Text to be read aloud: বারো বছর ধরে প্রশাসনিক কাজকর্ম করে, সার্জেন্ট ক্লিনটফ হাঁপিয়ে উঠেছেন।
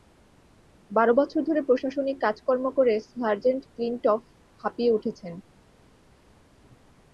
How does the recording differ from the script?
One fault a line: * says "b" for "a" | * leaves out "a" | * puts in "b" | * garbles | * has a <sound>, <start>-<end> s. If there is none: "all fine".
all fine